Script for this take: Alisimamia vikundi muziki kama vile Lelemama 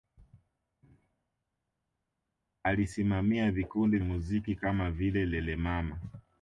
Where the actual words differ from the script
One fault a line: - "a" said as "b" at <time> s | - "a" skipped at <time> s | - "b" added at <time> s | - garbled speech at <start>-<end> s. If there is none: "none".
none